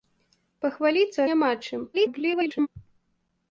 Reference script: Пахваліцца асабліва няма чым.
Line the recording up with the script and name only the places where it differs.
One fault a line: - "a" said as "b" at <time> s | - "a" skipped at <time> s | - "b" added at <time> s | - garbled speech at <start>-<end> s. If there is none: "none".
- "асабліва" skipped at 1.2 s
- garbled speech at 1.9-2.7 s